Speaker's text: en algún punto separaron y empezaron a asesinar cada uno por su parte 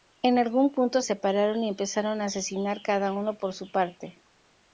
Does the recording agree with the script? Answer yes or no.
yes